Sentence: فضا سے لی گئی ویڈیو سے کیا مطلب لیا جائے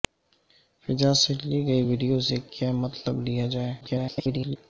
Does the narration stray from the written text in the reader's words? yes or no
yes